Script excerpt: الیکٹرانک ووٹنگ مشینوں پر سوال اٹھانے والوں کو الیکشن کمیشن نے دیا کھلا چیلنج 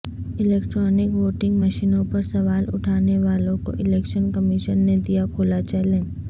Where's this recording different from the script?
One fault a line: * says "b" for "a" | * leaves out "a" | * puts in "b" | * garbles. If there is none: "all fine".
all fine